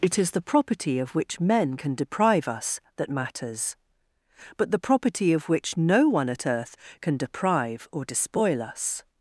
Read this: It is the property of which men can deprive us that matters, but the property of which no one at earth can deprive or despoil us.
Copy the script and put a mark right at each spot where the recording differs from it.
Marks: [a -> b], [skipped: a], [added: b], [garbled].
It is the property of which men can deprive us that matters, but the property of which no one at earth can deprive or despoil us.